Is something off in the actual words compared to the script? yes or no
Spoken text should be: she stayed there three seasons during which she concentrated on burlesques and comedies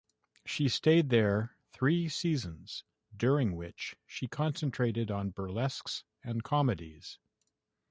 no